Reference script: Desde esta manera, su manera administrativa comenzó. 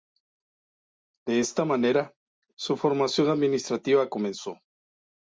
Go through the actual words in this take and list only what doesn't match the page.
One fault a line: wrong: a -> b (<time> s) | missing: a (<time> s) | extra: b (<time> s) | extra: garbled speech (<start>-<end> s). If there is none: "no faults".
wrong: Desde -> De (1.3 s)
wrong: manera -> formación (2.8 s)